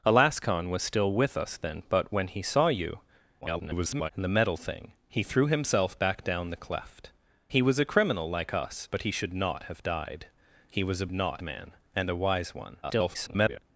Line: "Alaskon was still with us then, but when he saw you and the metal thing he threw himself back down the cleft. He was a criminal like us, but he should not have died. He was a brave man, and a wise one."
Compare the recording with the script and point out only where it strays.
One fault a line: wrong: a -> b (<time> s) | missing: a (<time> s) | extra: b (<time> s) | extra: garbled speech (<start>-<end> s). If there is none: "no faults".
extra: garbled speech (3.4-4.1 s)
wrong: brave -> not (11.1 s)
extra: garbled speech (12.8-13.6 s)